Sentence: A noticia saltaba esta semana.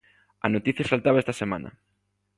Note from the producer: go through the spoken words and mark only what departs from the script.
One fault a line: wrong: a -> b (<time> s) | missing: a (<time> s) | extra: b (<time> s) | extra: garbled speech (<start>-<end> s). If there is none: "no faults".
no faults